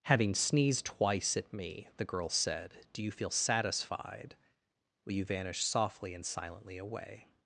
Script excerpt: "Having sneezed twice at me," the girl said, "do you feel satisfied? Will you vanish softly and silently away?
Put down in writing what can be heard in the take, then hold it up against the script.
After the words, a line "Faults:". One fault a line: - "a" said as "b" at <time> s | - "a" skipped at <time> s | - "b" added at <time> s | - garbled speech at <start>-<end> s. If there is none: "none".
"Having sneezed twice at me," the girl said, "do you feel satisfied? Will you vanish softly and silently away?
Faults:
none